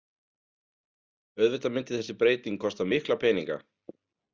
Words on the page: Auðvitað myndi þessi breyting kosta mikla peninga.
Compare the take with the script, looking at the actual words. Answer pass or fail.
pass